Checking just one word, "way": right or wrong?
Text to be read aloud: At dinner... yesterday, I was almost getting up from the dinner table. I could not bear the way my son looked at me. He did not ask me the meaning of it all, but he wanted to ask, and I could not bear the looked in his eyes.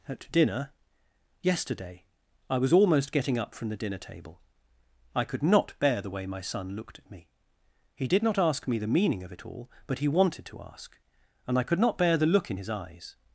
right